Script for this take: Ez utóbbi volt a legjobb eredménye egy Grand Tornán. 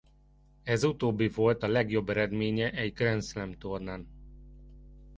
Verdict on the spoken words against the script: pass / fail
fail